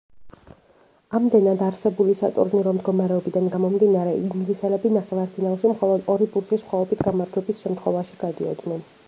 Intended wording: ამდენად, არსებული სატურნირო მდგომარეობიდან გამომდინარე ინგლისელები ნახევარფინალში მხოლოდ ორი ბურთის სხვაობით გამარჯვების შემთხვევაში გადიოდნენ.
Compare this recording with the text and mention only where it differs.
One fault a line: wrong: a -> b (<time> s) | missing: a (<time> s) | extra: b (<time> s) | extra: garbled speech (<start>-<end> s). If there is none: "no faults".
no faults